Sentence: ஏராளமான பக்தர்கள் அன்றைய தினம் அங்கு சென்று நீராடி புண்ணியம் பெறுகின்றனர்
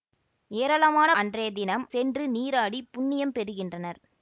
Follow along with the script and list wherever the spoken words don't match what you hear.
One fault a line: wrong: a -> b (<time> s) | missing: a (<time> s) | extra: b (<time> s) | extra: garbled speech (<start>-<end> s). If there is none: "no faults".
missing: பக்தர்கள் (1.1 s)
missing: அங்கு (1.9 s)